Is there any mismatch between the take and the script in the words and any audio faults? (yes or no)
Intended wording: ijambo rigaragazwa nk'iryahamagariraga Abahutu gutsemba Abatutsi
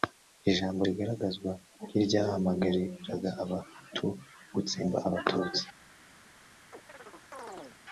yes